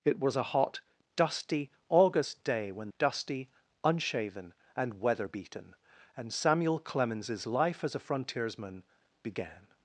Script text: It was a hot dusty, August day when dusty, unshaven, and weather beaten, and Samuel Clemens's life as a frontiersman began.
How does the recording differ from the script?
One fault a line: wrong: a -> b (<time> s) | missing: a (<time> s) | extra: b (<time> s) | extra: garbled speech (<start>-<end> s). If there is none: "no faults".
no faults